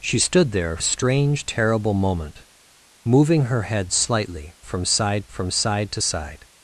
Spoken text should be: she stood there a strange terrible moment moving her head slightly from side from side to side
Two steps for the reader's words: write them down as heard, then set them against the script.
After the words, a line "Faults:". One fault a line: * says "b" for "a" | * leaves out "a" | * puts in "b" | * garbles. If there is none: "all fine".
she stood there a strange terrible moment moving her head slightly from side from side to side
Faults:
all fine